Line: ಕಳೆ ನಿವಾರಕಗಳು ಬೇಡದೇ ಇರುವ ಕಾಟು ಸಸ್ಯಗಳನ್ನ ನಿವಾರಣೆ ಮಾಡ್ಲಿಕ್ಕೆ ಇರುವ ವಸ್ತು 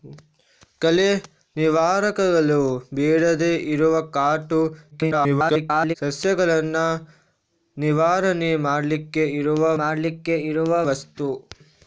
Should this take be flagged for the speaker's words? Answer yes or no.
yes